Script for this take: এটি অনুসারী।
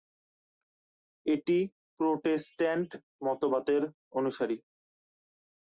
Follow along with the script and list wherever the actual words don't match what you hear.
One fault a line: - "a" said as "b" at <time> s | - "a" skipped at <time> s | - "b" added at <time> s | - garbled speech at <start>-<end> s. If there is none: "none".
- "প্রোটেস্ট্যান্ট মতবাদের" added at 2.0 s